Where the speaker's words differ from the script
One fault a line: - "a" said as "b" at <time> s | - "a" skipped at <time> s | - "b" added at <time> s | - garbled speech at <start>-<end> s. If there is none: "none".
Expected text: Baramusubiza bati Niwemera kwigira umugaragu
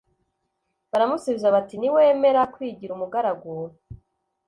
none